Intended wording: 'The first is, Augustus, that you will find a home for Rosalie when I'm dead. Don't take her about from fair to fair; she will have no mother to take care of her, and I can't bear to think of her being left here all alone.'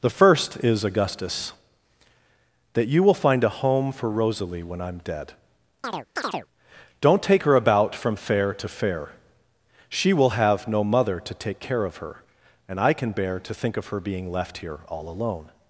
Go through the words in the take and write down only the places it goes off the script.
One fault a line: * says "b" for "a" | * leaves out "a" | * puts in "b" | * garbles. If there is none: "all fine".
* says "can" for "can't"